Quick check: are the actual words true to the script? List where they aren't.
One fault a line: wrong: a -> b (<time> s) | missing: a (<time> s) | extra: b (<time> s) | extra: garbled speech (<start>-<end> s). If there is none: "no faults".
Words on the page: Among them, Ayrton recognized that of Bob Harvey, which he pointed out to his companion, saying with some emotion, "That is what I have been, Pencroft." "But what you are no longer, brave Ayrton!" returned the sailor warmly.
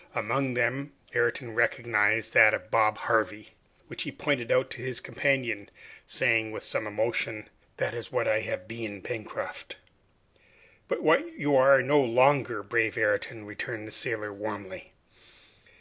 no faults